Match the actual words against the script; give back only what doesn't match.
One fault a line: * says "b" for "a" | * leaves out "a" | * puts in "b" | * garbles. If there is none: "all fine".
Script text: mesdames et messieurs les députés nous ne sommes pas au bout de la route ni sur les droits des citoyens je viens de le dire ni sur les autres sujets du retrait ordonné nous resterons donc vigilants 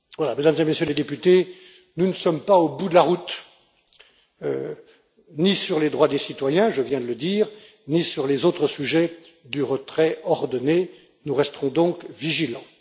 all fine